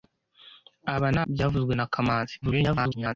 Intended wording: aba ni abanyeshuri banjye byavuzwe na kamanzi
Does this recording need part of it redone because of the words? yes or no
yes